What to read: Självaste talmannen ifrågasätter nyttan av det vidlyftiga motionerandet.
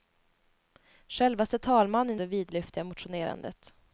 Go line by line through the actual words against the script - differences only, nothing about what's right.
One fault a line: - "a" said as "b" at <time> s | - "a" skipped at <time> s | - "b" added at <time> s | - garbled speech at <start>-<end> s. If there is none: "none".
- "ifrågasätter nyttan av" skipped at 2.2 s